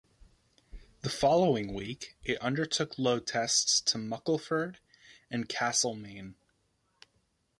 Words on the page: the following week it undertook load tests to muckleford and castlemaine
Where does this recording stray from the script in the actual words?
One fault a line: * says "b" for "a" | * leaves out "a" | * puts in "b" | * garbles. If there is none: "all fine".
all fine